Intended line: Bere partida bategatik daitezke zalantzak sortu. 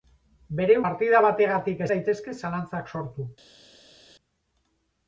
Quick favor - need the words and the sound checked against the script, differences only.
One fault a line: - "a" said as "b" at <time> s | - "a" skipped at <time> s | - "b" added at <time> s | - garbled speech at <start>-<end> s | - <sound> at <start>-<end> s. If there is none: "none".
none